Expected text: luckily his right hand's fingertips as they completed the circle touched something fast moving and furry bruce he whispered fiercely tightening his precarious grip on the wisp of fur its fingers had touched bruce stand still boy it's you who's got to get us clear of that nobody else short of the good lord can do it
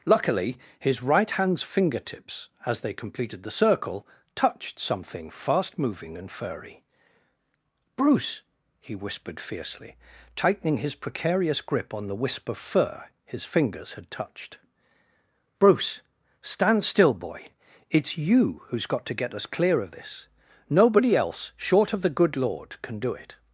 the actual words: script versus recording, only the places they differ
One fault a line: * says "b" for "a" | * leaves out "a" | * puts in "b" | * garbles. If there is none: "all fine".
* says "his" for "its"
* says "this" for "that"